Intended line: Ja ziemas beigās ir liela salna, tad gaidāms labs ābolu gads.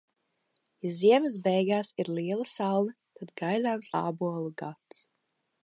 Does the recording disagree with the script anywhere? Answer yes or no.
yes